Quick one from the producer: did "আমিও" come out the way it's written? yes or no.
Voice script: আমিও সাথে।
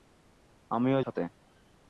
yes